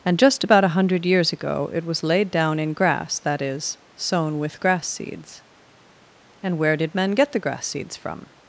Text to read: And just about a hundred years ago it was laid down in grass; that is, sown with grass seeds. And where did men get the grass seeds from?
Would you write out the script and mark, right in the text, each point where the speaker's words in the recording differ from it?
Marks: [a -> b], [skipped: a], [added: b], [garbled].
And just about a hundred years ago it was laid down in grass; that is, sown with grass seeds. And where did men get the grass seeds from?